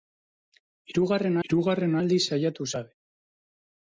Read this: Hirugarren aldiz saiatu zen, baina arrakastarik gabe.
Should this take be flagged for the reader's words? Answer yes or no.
yes